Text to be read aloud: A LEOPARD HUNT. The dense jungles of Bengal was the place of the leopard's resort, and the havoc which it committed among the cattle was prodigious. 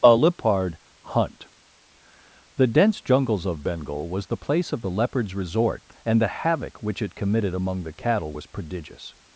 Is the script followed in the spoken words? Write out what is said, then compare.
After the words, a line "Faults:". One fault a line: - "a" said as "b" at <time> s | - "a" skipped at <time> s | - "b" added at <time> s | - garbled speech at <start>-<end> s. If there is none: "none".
A LEOPARD HUNT. The dense jungles of Bengal was the place of the leopard's resort, and the havoc which it committed among the cattle was prodigious.
Faults:
none